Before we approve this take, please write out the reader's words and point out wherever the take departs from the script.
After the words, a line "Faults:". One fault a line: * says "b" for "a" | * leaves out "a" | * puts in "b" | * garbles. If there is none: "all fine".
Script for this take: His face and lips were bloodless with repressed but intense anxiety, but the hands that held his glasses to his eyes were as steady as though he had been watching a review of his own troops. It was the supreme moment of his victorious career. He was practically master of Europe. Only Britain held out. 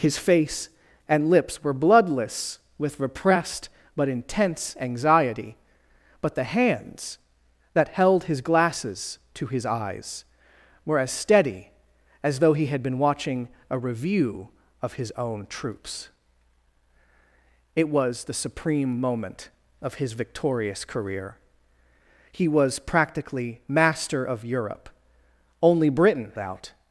His face and lips were bloodless with repressed but intense anxiety, but the hands that held his glasses to his eyes were as steady as though he had been watching a review of his own troops. It was the supreme moment of his victorious career. He was practically master of Europe. Only Britain out.
Faults:
* leaves out "held"